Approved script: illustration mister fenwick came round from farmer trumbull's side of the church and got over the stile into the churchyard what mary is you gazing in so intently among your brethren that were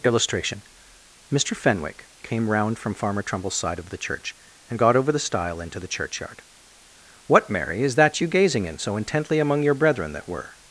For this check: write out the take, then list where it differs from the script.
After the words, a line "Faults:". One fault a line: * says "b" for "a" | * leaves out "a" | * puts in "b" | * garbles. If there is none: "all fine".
illustration mister fenwick came round from farmer trumbull's side of the church and got over the stile into the churchyard what mary is that you gazing in so intently among your brethren that were
Faults:
* puts in "that"